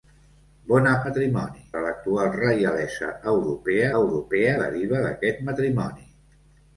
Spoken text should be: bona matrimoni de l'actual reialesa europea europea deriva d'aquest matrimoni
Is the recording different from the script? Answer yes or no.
no